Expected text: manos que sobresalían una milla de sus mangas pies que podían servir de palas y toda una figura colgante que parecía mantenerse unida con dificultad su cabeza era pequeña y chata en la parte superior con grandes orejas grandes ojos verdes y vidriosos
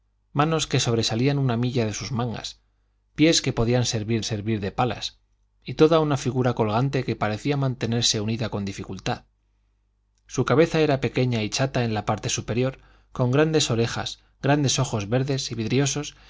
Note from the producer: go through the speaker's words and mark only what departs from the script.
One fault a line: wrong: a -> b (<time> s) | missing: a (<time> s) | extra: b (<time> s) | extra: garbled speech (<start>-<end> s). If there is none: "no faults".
extra: servir (4.2 s)